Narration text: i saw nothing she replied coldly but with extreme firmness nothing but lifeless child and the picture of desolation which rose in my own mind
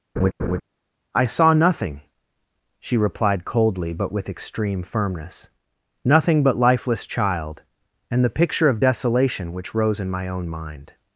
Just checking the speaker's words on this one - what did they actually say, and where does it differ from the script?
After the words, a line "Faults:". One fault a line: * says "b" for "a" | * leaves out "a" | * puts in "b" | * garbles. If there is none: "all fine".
i saw nothing she replied coldly but with extreme firmness nothing but lifeless child and the picture of desolation which rose in my own mind
Faults:
all fine